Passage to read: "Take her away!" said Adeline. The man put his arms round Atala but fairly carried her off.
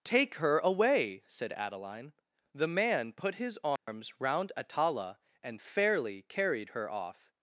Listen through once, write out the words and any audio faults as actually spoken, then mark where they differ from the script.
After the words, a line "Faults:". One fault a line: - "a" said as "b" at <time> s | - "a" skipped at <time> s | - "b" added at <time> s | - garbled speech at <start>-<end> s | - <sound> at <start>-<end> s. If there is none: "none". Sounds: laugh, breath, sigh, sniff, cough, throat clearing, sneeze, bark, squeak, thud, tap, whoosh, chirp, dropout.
"Take her away!" said Adeline. The man put his arms round Atala and fairly carried her off.
Faults:
- dropout at 3.8-3.9 s
- "but" said as "and" at 5.4 s